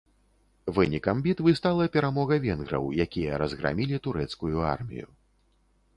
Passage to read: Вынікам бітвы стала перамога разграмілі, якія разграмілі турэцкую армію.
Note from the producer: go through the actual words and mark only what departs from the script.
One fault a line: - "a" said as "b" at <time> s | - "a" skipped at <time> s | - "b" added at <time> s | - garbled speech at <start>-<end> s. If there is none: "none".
- "разграмілі" said as "венграў" at 2.5 s